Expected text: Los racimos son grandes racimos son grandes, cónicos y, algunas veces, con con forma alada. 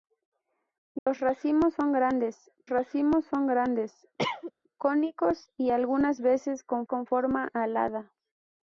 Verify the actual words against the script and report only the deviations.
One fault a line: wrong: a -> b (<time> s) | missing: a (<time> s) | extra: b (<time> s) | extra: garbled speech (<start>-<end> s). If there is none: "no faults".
no faults